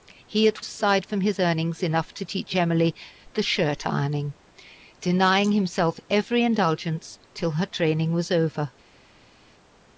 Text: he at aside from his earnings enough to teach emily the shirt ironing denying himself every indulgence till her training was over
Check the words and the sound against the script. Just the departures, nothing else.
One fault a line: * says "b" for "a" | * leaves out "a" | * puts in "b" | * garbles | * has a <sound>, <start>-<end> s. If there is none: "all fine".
all fine